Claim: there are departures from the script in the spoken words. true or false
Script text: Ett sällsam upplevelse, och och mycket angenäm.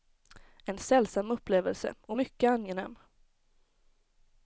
true